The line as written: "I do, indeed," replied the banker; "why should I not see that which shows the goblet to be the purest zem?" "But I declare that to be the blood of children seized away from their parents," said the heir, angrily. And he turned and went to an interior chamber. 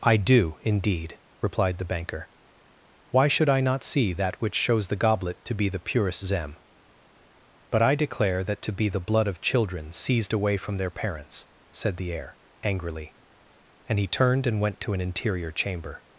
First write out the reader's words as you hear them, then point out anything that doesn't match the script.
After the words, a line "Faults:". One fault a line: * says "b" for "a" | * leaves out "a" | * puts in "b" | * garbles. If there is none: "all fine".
"I do, indeed," replied the banker; "why should I not see that which shows the goblet to be the purest zem?" "But I declare that to be the blood of children seized away from their parents," said the heir, angrily. And he turned and went to an interior chamber.
Faults:
all fine